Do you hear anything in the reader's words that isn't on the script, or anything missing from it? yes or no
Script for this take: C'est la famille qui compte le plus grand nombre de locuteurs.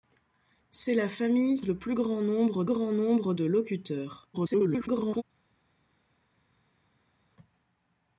yes